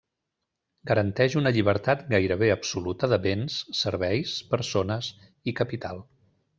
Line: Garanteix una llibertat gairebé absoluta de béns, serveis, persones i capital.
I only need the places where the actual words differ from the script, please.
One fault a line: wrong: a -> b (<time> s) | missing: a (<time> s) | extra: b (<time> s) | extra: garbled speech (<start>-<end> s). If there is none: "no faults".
no faults